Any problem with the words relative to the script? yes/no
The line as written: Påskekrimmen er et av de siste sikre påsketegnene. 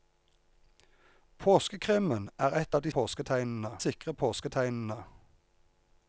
yes